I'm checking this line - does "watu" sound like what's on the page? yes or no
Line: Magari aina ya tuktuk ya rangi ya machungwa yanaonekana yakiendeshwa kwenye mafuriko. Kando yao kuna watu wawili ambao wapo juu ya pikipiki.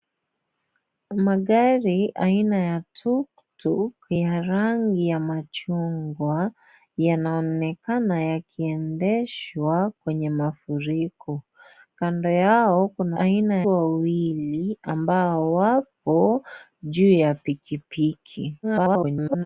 no